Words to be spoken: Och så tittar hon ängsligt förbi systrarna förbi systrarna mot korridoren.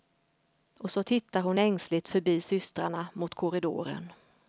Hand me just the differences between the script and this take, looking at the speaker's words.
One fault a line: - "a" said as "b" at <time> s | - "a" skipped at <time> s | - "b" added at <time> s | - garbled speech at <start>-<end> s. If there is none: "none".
- "förbi systrarna" skipped at 3.1 s